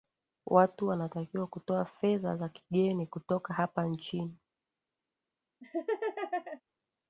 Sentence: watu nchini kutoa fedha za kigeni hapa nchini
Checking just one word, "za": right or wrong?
right